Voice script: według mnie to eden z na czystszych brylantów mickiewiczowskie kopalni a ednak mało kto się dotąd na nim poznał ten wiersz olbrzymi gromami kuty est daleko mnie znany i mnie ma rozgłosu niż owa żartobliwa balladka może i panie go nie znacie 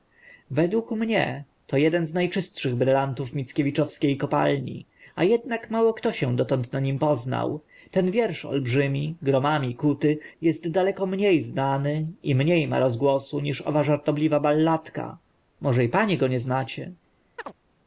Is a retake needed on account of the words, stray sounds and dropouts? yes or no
yes